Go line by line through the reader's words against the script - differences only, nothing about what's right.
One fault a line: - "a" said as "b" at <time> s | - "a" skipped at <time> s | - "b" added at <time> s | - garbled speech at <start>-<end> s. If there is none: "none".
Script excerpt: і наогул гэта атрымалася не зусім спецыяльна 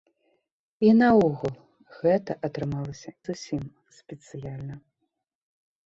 - "не" skipped at 3.1 s